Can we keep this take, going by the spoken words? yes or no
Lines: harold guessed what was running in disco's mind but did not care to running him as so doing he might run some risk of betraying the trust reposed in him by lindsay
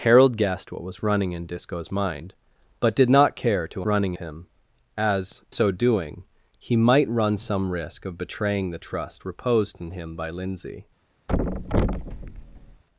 yes